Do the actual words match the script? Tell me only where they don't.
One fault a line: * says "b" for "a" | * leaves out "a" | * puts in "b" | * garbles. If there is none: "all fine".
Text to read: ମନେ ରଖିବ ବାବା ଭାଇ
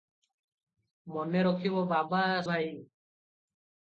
all fine